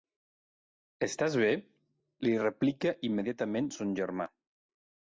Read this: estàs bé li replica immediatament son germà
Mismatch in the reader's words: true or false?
false